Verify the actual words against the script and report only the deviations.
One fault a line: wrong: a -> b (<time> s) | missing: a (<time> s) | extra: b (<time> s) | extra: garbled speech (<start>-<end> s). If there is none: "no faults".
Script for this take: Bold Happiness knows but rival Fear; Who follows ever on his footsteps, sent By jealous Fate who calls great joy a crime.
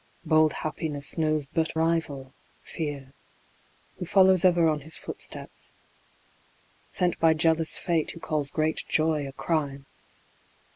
no faults